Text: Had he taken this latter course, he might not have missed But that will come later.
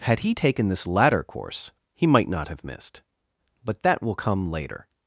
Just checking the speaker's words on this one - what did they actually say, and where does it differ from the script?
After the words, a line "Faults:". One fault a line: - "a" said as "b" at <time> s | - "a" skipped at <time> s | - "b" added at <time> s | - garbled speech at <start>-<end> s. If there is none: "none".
Had he taken this latter course, he might not have missed But that will come later.
Faults:
none